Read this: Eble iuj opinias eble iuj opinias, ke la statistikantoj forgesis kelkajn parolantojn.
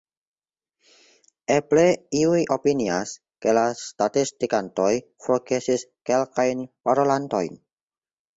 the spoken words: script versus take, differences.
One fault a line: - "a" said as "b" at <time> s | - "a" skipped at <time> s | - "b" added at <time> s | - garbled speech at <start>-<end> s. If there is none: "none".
- "eble iuj opinias" skipped at 3.1 s